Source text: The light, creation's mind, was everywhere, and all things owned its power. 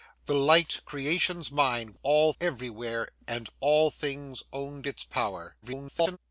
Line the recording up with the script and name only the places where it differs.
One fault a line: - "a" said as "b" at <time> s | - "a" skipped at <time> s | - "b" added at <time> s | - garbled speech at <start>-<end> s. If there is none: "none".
- "was" said as "all" at 2.0 s
- garbled speech at 5.6-6.2 s